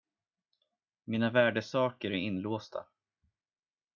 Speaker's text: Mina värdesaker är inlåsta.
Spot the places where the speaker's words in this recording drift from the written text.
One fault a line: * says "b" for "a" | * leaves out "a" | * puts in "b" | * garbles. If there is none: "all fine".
all fine